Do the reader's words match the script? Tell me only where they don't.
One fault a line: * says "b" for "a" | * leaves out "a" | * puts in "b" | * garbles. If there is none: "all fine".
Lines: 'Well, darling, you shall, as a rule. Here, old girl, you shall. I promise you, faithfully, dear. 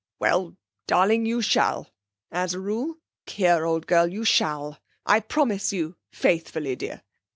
all fine